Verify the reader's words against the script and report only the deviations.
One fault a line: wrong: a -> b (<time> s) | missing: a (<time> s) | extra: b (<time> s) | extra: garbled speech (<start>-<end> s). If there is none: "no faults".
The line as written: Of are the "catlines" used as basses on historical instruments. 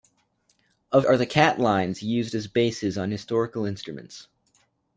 no faults